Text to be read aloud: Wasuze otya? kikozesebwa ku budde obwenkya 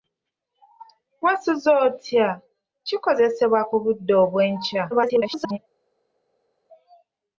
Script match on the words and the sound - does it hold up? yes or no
no